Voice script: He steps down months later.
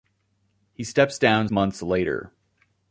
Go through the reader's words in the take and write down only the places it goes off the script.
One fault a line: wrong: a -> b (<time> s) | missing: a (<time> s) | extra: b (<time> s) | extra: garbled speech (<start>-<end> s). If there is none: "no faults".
no faults